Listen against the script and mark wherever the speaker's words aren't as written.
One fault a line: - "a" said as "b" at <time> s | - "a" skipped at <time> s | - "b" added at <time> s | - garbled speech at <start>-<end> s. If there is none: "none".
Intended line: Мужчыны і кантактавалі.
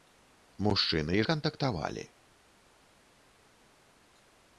none